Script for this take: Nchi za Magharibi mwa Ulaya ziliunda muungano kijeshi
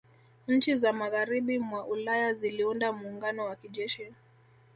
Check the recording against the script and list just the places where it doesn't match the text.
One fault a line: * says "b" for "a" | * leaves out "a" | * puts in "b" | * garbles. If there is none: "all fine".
* puts in "wa"